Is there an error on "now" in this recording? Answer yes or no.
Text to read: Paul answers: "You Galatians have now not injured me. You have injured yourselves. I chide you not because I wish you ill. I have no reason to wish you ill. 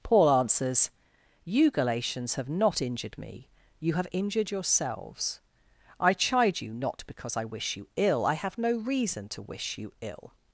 yes